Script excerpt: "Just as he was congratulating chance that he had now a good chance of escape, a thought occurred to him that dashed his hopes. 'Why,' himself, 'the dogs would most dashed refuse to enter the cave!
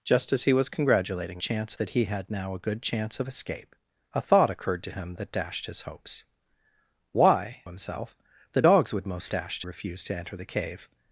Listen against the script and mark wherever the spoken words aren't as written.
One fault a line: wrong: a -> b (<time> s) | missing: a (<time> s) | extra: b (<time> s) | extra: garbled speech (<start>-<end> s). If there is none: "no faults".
no faults